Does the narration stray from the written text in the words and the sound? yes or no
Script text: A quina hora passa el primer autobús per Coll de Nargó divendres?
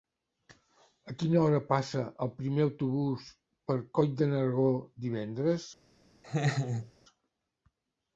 yes